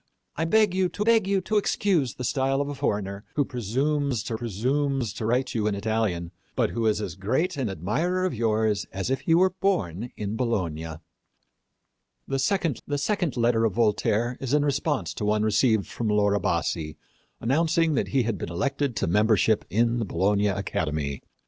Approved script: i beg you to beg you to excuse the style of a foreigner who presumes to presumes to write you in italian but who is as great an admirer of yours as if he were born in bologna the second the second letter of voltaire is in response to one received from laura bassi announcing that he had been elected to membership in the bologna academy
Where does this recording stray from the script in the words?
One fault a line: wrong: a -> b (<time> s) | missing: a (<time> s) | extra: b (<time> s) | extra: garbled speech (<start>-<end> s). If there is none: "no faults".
no faults